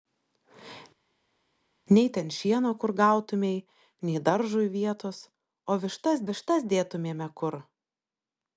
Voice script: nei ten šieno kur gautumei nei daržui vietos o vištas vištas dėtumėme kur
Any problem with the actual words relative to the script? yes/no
no